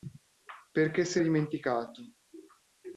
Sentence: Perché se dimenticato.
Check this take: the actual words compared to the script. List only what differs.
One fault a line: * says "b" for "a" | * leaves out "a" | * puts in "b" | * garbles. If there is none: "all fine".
all fine